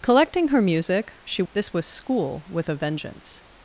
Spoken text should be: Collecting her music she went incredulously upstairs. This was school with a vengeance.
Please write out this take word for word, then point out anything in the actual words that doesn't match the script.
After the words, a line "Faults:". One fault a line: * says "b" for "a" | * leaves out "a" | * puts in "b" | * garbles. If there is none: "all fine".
Collecting her music she. This was school with a vengeance.
Faults:
* leaves out "went incredulously upstairs"